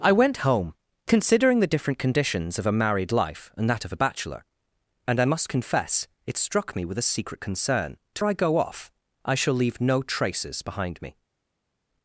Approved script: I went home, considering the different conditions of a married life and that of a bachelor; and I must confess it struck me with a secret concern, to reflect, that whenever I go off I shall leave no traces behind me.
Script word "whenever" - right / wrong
wrong